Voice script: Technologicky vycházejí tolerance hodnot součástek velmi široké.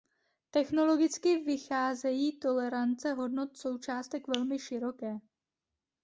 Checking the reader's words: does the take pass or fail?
pass